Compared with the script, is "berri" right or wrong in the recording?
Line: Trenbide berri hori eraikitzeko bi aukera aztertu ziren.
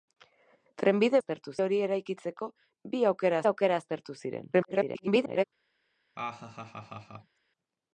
wrong